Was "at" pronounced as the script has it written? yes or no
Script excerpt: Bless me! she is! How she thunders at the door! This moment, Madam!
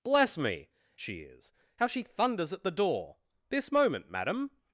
yes